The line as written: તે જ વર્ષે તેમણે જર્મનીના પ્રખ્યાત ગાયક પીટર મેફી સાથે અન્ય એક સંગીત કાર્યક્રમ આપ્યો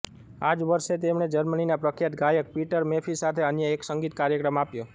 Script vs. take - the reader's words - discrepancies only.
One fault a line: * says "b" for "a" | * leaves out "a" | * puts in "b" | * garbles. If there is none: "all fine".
* says "આ" for "તે"